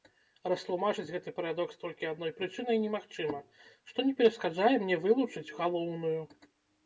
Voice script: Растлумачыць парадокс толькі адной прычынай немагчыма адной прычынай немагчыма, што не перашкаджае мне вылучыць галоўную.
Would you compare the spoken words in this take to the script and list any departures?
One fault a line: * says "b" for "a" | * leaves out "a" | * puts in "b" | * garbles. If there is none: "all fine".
* puts in "гэты"
* leaves out "адной прычынай немагчыма"